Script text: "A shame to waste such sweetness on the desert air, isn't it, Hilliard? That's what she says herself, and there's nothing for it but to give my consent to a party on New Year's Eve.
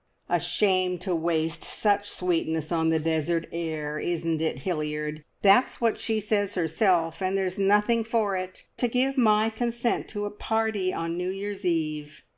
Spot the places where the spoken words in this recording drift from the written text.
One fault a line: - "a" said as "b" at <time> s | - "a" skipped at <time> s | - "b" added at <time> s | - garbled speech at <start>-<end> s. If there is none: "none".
- "but" skipped at 8.6 s